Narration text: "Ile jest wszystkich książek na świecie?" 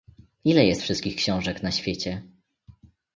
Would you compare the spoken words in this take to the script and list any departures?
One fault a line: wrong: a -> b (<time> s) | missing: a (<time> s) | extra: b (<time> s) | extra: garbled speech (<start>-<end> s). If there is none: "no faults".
no faults